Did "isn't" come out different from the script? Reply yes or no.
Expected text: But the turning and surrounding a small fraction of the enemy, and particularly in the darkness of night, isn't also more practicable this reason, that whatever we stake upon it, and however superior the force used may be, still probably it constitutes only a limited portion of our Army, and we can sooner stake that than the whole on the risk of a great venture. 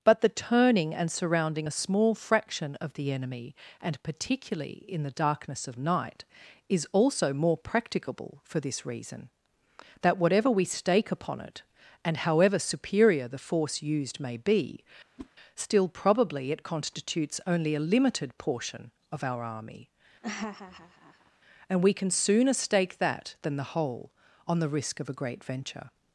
yes